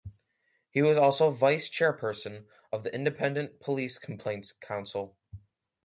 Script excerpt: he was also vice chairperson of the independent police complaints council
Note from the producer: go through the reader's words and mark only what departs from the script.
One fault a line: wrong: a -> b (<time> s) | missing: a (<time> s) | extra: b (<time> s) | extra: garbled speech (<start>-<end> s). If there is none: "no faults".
no faults